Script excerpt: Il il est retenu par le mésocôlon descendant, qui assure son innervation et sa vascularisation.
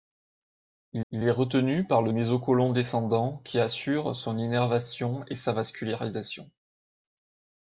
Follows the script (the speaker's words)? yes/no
yes